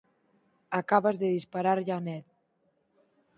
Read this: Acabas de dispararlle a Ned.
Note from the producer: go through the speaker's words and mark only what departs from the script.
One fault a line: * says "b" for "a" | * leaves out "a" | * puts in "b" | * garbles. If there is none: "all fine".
all fine